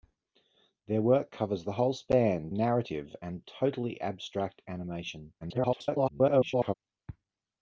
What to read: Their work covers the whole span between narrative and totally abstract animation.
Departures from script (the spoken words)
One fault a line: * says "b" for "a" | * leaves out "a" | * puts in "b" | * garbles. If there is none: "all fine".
* leaves out "between"
* garbles